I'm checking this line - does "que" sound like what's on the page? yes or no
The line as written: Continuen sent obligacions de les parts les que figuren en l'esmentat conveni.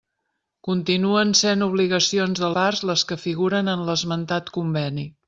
yes